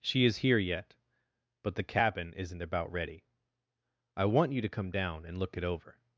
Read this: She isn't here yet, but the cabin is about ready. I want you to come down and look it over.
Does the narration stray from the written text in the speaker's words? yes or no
yes